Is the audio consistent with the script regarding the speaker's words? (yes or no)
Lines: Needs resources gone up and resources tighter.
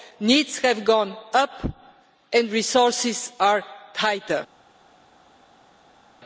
no